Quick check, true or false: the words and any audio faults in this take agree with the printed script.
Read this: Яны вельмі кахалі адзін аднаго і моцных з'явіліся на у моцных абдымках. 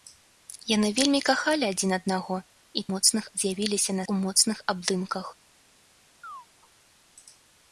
false